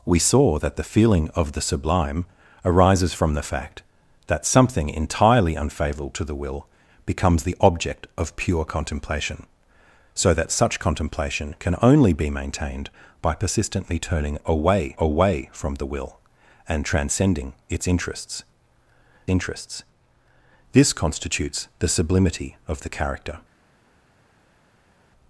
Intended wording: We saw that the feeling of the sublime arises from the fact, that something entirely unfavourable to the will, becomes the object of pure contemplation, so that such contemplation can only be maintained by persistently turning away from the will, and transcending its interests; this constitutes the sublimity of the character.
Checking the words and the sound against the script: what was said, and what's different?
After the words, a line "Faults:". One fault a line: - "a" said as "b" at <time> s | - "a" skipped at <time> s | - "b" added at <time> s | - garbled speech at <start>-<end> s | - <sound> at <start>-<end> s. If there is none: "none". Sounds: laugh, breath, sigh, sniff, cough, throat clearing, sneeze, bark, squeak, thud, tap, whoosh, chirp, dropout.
We saw that the feeling of the sublime arises from the fact, that something entirely unfavourable to the will, becomes the object of pure contemplation, so that such contemplation can only be maintained by persistently turning away away from the will, and transcending its interests interests; this constitutes the sublimity of the character.
Faults:
- "away" added at 15.0 s
- "interests" added at 19.3 s